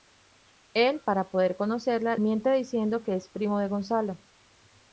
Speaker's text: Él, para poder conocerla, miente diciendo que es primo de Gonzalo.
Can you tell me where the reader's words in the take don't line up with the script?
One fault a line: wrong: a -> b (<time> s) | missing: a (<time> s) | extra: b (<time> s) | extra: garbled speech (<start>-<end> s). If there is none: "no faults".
no faults